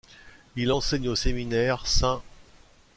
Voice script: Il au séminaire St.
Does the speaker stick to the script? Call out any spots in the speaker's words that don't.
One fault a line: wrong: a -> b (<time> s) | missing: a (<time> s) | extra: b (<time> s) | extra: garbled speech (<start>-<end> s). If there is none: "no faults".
extra: enseigne (0.7 s)